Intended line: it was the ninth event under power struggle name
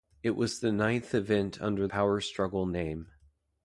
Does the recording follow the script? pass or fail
pass